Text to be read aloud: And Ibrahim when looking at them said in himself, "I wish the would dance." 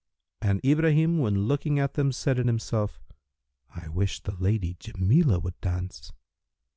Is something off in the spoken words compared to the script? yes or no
yes